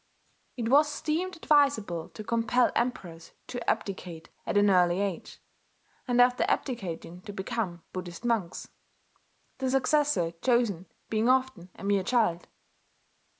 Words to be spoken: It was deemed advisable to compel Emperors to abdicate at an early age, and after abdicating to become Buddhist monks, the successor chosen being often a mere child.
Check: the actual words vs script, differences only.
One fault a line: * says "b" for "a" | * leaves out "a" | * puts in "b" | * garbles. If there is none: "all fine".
all fine